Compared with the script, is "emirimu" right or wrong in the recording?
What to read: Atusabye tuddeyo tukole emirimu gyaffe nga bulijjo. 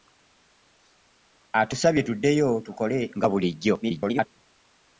wrong